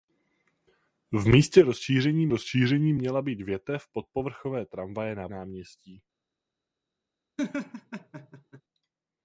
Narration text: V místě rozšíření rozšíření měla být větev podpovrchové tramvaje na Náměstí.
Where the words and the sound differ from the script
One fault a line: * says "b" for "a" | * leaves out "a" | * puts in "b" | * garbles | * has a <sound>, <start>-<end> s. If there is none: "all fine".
* has a laugh, 7.4-8.6 s